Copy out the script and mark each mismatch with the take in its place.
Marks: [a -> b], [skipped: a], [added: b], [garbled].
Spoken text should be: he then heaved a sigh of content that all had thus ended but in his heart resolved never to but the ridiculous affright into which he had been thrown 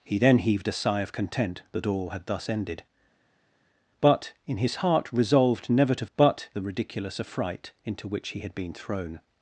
he then heaved a sigh of content that all had thus ended but in his heart resolved never to but the ridiculous affright into which he had been thrown